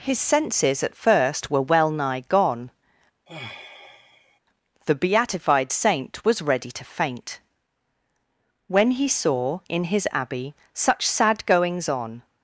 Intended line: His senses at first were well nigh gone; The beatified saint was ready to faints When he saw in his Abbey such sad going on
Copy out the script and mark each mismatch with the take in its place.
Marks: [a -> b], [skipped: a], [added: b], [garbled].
His senses at first were well nigh gone; The beatified saint was ready to [faints -> faint] When he saw in his Abbey such sad [going -> goings] on